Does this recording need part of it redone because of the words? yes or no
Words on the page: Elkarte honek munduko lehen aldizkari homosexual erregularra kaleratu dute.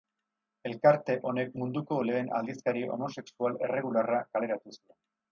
yes